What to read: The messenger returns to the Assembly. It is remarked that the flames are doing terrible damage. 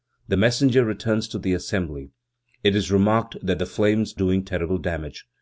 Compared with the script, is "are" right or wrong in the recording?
wrong